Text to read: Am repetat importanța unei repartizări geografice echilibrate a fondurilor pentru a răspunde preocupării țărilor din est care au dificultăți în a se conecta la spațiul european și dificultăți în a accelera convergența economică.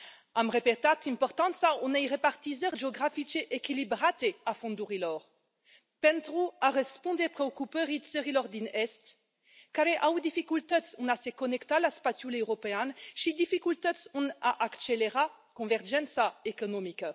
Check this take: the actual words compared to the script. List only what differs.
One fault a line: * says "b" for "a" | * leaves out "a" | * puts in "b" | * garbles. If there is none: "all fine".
all fine